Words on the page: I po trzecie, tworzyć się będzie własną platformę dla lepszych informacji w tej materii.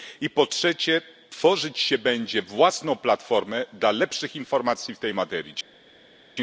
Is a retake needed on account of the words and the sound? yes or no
no